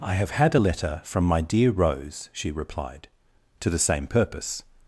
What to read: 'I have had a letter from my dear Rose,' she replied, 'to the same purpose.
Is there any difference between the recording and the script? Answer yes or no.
no